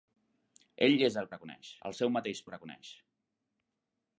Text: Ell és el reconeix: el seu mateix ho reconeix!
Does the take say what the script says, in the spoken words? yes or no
yes